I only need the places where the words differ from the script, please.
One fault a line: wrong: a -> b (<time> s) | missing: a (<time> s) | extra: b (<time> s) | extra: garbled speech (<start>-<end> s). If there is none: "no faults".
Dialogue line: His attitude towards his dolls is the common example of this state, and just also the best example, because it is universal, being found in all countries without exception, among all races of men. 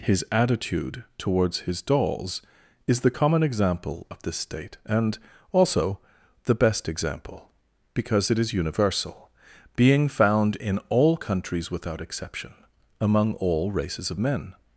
missing: just (5.2 s)